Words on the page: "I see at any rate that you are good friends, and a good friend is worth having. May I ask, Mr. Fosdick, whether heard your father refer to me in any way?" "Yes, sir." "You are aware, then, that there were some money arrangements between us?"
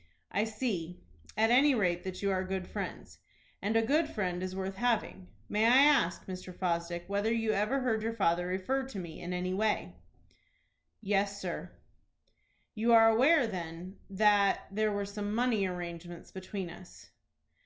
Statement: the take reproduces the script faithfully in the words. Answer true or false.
false